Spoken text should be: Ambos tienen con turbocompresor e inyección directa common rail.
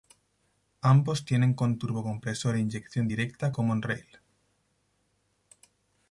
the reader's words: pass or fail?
pass